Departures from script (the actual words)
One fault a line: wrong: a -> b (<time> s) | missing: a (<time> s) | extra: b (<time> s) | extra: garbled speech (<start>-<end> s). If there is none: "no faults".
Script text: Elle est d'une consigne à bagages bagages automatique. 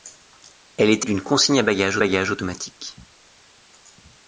no faults